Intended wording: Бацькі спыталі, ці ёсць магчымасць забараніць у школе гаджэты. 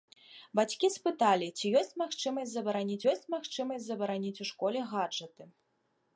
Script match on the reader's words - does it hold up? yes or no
no